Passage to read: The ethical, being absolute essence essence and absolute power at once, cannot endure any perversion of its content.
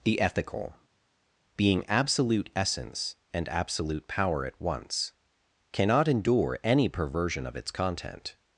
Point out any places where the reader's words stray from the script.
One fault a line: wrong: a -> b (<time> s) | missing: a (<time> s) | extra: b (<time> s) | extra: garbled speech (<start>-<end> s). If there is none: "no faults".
missing: essence (3.1 s)